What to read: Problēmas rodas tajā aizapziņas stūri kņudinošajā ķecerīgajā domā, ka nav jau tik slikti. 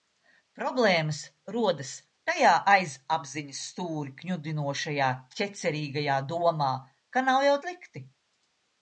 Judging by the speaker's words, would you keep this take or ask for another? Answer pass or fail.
fail